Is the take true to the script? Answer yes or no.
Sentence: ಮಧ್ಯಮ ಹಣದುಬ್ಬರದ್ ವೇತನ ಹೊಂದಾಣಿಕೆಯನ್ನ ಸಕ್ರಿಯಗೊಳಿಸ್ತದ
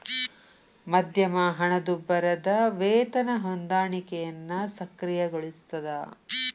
yes